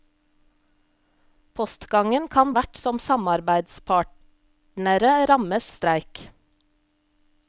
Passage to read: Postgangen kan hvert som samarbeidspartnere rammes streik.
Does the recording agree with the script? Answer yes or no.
yes